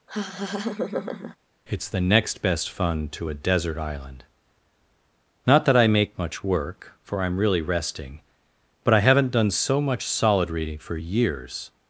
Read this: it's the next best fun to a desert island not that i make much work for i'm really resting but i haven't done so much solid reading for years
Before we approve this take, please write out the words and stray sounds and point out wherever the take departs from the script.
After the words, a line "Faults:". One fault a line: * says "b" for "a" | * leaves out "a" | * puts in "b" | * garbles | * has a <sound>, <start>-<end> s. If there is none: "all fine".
it's the next best fun to a desert island not that i make much work for i'm really resting but i haven't done so much solid reading for years
Faults:
* has a laugh, 0.1-1.4 s